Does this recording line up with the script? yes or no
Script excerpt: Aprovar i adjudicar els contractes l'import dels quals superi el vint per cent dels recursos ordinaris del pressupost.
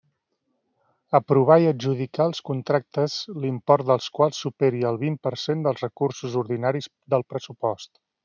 yes